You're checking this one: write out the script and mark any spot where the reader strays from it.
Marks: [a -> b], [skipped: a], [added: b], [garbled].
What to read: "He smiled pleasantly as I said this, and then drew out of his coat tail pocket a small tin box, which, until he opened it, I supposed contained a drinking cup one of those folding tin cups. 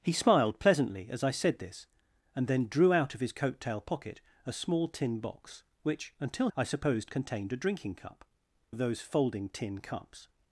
"He smiled pleasantly as I said this, and then drew out of his coat tail pocket a small tin box, which, until [skipped: he opened it,] I supposed contained a drinking cup [skipped: one] of those folding tin cups.